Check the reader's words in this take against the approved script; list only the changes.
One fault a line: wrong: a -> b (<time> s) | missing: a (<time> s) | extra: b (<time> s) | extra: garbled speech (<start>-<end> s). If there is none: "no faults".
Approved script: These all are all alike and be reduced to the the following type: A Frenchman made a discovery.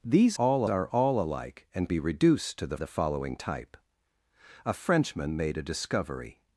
no faults